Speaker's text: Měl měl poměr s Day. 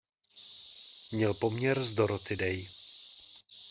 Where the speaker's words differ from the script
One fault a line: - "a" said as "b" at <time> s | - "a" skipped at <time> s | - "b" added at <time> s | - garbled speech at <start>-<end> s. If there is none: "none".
- "měl" skipped at 1.3 s
- "Dorothy" added at 1.9 s